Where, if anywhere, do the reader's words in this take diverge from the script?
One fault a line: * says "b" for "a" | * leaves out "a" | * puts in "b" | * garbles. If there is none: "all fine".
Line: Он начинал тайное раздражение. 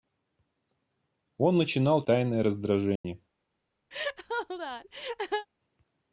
all fine